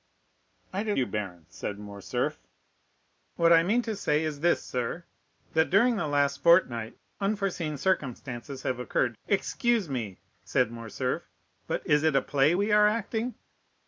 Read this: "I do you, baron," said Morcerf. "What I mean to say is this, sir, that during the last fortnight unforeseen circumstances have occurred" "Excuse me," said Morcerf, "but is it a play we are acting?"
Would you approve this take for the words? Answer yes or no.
yes